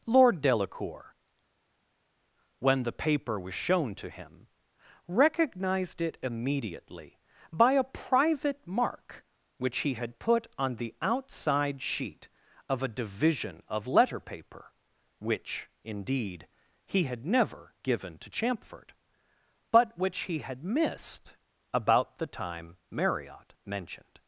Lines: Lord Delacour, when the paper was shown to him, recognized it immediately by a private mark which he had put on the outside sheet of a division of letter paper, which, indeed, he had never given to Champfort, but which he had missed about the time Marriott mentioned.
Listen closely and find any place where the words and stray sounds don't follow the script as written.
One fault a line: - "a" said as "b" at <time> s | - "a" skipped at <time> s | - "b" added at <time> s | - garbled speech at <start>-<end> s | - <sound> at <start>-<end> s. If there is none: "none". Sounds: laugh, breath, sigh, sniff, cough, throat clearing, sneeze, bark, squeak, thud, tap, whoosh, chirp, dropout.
none